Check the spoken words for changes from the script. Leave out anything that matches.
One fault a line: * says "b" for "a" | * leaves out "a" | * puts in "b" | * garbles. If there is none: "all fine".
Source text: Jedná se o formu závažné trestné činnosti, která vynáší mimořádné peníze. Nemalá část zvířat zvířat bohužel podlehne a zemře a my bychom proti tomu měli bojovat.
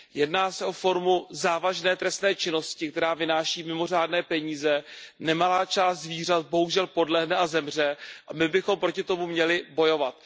* leaves out "zvířat"